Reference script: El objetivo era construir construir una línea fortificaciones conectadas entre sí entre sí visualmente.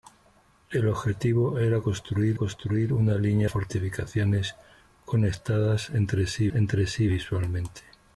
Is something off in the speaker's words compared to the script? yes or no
no